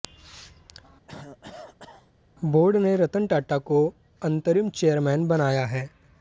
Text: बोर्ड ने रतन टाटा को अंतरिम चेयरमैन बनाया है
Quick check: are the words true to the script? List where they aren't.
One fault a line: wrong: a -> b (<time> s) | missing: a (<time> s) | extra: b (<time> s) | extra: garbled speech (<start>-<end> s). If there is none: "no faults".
no faults